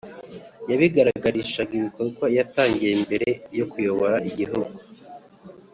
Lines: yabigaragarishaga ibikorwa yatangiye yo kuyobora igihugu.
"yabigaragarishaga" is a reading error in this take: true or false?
false